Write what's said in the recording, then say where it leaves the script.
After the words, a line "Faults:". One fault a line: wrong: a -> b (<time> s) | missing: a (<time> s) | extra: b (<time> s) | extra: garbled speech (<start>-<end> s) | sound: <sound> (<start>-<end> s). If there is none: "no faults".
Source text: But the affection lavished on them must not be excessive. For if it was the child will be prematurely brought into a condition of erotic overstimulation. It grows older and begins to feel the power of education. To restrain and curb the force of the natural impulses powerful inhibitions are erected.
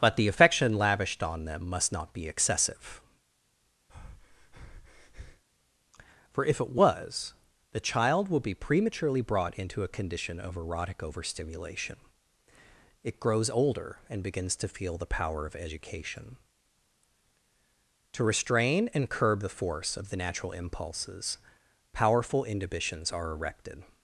But the affection lavished on them must not be excessive. For if it was the child will be prematurely brought into a condition of erotic overstimulation. It grows older and begins to feel the power of education. To restrain and curb the force of the natural impulses powerful inhibitions are erected.
Faults:
sound: breath (3.9-5.4 s)